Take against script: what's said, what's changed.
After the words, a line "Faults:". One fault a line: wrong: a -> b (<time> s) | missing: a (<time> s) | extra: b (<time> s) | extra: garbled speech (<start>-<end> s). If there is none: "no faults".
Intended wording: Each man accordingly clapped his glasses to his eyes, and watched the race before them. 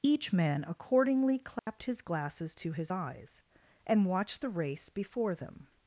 Each man accordingly clapped his glasses to his eyes, and watched the race before them.
Faults:
no faults